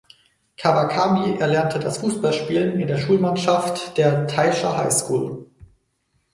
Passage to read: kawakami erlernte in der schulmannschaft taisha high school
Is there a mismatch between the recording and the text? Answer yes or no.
yes